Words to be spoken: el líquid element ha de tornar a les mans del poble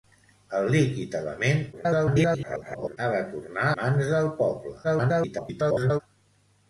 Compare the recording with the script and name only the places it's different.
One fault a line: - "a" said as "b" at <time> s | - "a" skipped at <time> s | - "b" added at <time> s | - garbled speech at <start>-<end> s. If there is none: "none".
- garbled speech at 1.7-3.0 s
- "a les" skipped at 3.7 s
- garbled speech at 4.8-6.0 s